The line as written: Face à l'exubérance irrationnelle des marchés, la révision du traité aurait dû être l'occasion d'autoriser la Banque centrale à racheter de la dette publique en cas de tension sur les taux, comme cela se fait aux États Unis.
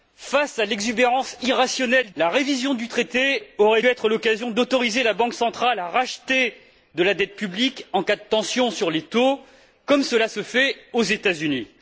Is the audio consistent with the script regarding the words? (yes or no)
no